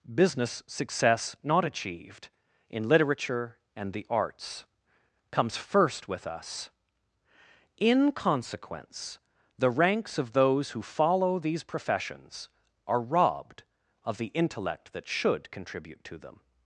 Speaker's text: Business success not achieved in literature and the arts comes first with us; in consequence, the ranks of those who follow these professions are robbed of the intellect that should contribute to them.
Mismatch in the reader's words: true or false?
false